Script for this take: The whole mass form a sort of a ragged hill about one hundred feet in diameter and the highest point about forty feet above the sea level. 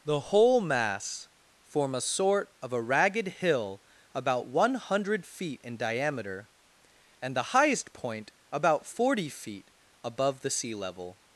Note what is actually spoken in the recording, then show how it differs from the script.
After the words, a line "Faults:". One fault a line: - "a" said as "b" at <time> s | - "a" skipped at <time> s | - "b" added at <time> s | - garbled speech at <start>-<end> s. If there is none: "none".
The whole mass form a sort of a ragged hill about one hundred feet in diameter and the highest point about forty feet above the sea level.
Faults:
none